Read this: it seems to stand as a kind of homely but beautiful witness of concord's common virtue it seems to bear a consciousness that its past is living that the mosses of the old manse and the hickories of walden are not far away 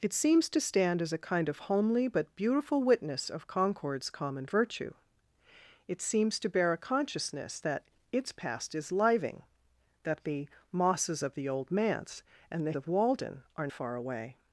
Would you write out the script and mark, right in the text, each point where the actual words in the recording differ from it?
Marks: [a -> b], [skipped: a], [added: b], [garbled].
it seems to stand as a kind of homely but beautiful witness of concord's common virtue it seems to bear a consciousness that its past is living that the mosses of the old manse and the [skipped: hickories] of walden are [skipped: not] far away